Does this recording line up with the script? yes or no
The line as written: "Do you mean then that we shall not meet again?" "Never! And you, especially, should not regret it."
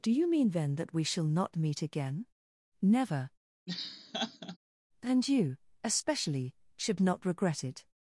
yes